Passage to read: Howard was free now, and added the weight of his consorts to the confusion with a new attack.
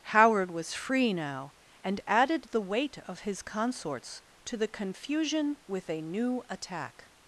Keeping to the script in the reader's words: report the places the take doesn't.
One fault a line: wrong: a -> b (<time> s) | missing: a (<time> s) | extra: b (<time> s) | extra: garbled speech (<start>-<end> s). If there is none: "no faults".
no faults